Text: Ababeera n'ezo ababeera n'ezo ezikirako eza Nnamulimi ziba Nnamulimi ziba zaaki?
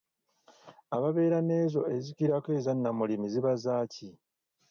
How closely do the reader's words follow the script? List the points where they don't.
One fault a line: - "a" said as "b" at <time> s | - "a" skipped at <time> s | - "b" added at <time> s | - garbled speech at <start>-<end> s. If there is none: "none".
- "ababeera n'ezo" skipped at 1.8 s
- "Nnamulimi ziba" skipped at 3.5 s